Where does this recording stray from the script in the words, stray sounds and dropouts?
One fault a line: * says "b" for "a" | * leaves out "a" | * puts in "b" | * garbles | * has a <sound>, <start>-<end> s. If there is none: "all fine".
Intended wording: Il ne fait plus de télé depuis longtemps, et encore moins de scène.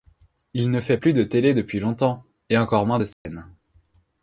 * has a dropout, 3.1-3.3 s